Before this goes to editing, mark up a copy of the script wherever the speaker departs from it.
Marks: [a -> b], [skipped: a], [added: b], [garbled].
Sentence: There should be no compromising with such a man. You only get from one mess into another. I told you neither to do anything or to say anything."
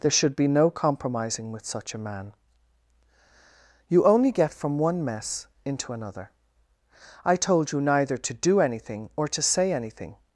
There should be no compromising with such a man. You only get from one mess into another. I told you neither to do anything or to say anything."